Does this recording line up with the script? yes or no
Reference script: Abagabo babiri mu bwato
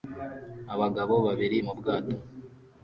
yes